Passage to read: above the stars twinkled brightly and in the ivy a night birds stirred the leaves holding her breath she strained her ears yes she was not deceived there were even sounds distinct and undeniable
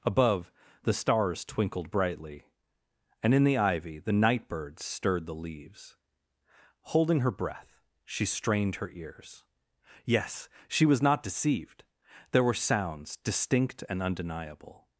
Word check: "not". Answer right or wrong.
right